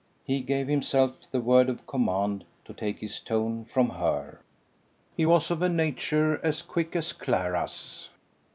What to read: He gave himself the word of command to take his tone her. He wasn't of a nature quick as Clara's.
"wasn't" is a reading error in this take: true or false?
true